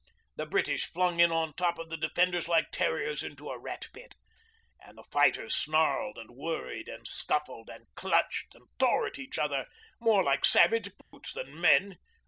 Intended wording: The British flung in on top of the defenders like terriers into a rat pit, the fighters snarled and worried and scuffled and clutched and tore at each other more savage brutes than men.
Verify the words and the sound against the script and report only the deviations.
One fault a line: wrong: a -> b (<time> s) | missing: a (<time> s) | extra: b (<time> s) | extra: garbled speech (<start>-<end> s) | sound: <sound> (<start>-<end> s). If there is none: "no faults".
extra: and (4.8 s)
extra: like (10.2 s)
sound: dropout (11.0-11.1 s)